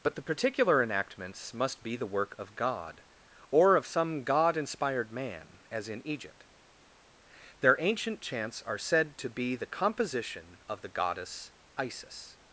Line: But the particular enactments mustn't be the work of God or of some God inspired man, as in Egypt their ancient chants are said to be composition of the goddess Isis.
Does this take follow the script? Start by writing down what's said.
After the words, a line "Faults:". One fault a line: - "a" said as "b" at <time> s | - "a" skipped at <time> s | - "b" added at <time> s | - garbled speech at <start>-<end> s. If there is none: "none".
But the particular enactments must be the work of God or of some God inspired man, as in Egypt their ancient chants are said to be the composition of the goddess Isis.
Faults:
- "mustn't" said as "must" at 1.5 s
- "the" added at 9.6 s